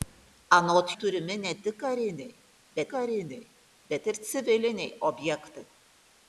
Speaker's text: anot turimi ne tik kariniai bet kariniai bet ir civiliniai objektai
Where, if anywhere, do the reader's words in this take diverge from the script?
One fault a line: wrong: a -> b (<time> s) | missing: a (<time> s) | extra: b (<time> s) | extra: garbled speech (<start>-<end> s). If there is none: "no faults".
no faults